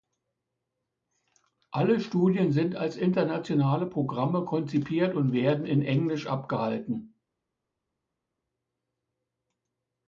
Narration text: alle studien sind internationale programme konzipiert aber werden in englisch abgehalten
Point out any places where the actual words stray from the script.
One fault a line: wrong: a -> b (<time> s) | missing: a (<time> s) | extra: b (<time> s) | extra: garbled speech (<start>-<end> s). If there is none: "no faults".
extra: als (2.8 s)
wrong: aber -> und (5.1 s)